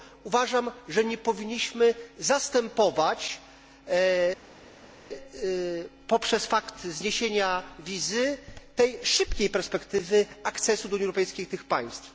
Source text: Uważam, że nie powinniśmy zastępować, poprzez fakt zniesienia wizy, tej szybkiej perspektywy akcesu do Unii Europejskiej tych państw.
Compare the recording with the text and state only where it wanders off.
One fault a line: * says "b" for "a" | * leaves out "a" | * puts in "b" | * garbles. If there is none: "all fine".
all fine